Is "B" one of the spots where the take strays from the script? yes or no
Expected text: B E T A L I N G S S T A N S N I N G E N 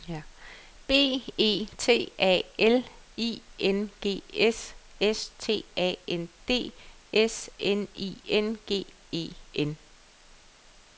no